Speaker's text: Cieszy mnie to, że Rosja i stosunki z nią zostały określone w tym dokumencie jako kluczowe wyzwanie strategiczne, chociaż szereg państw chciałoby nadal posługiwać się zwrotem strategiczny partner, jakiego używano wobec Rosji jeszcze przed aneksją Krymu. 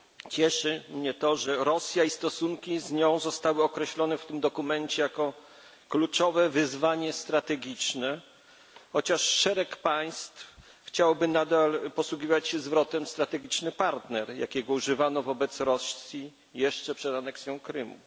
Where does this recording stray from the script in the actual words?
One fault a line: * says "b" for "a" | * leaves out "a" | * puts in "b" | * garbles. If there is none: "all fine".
all fine